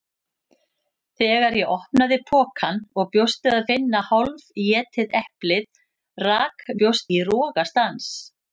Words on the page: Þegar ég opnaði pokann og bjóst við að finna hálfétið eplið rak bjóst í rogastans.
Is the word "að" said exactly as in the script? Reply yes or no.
yes